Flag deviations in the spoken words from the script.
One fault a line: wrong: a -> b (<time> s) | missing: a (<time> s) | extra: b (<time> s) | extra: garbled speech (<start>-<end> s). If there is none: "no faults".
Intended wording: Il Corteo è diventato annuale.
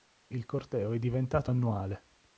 no faults